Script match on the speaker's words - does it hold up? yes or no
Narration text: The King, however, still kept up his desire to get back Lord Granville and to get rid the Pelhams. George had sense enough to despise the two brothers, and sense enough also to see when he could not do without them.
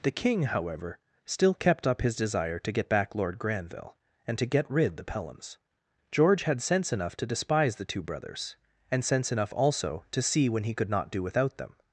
yes